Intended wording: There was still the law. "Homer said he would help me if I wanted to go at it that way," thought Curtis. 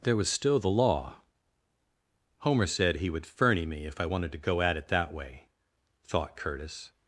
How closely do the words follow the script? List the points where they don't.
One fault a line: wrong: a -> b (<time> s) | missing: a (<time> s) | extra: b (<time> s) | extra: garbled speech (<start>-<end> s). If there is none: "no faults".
wrong: help -> ferny (3.3 s)